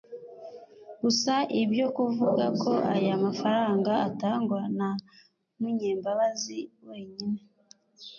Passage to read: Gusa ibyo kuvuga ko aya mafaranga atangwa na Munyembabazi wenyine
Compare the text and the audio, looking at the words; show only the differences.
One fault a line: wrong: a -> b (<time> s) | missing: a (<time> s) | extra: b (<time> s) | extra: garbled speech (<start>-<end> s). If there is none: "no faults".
no faults